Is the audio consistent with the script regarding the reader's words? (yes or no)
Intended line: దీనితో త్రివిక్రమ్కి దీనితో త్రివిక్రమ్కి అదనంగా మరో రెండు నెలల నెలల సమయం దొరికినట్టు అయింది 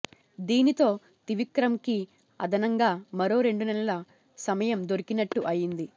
no